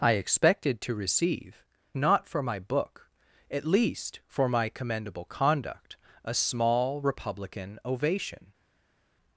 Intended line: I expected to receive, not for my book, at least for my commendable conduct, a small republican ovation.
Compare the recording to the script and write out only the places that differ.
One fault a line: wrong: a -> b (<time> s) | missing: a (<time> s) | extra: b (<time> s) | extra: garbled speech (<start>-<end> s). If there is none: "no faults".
no faults